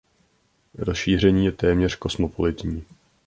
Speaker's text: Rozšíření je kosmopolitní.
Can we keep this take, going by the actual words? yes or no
no